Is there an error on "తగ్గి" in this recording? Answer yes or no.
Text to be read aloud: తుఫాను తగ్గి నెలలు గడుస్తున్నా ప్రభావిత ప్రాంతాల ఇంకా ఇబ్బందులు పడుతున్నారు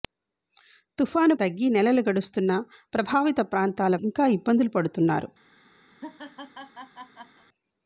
no